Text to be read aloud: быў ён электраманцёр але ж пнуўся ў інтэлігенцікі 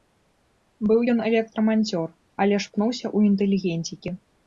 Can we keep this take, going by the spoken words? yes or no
yes